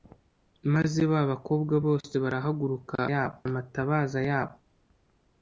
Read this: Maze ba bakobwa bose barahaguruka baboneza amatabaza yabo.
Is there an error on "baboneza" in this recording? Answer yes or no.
yes